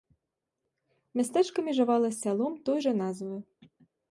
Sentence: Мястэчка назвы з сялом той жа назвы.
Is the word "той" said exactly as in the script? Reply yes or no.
yes